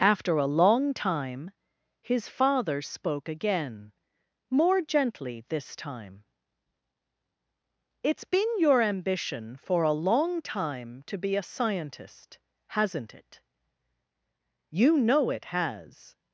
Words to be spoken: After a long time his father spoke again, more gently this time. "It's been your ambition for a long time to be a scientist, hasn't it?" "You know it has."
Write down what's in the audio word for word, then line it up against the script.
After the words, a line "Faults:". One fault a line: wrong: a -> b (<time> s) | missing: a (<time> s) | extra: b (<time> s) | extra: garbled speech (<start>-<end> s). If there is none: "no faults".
After a long time his father spoke again, more gently this time. "It's been your ambition for a long time to be a scientist, hasn't it?" "You know it has."
Faults:
no faults